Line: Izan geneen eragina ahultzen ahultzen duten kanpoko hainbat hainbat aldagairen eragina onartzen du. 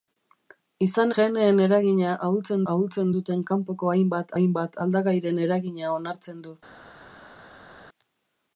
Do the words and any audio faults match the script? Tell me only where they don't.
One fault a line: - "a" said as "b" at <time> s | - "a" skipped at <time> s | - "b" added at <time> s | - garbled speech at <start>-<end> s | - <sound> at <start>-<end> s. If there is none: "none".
none